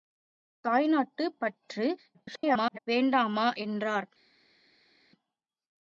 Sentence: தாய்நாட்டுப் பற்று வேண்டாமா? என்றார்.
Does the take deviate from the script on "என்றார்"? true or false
false